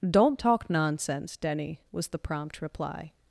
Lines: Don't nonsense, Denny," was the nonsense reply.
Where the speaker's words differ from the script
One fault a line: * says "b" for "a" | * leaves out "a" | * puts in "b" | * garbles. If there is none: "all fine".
* puts in "talk"
* says "prompt" for "nonsense"